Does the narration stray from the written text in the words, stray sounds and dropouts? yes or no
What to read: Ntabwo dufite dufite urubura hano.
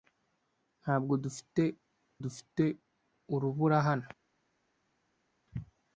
no